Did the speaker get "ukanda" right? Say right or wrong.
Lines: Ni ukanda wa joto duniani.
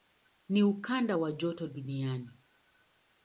right